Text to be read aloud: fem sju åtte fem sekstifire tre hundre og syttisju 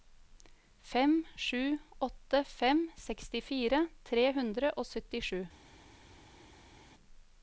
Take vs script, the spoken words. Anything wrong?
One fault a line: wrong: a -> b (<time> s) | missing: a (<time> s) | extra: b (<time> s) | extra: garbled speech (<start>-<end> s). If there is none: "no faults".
no faults